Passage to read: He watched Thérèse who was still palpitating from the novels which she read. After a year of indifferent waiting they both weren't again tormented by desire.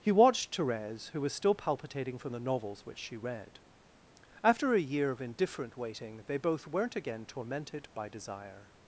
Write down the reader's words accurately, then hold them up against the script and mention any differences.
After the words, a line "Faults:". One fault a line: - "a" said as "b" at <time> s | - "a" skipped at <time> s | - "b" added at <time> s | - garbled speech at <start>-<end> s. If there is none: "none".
He watched Thérèse who was still palpitating from the novels which she read. After a year of indifferent waiting they both weren't again tormented by desire.
Faults:
none